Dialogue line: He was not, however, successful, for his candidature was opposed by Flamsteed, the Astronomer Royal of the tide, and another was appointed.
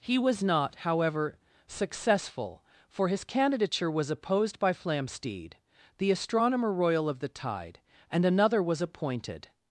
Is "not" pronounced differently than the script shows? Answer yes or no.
no